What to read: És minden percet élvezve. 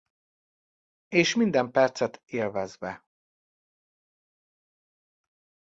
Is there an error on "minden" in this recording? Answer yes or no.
no